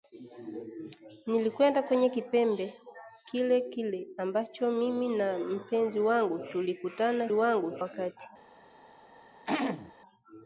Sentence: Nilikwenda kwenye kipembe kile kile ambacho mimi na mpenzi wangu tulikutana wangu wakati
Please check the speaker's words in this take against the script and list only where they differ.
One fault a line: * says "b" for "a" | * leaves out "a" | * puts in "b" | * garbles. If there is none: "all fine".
all fine